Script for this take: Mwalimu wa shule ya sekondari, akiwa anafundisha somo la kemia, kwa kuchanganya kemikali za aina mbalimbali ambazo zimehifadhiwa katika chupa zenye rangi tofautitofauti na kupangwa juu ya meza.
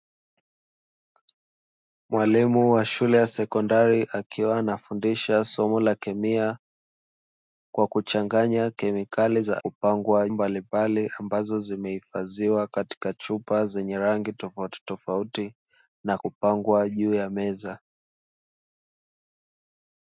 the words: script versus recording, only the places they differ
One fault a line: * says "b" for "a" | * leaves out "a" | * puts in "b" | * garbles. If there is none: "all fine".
* says "kupangwa" for "aina"